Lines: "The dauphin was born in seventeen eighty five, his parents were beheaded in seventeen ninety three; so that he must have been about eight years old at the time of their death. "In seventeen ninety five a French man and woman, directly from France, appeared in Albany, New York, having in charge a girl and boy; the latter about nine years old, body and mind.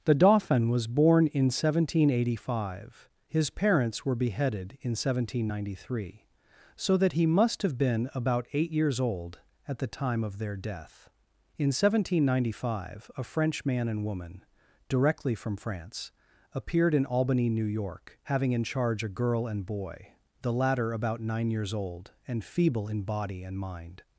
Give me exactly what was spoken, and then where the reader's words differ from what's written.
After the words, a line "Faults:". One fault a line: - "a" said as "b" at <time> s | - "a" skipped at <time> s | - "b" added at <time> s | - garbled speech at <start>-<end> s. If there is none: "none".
"The dauphin was born in seventeen eighty five, his parents were beheaded in seventeen ninety three; so that he must have been about eight years old at the time of their death. "In seventeen ninety five a French man and woman, directly from France, appeared in Albany, New York, having in charge a girl and boy; the latter about nine years old, and feeble in body and mind.
Faults:
- "and feeble in" added at 22.3 s